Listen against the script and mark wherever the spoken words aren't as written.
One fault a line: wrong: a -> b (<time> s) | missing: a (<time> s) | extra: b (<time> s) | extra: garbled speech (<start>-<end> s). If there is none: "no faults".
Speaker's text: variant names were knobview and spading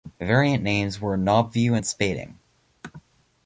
no faults